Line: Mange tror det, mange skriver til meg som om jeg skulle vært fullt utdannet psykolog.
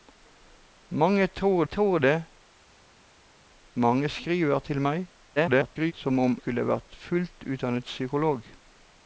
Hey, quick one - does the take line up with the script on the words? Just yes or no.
no